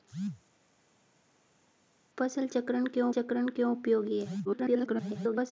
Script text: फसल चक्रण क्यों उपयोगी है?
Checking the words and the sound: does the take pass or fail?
fail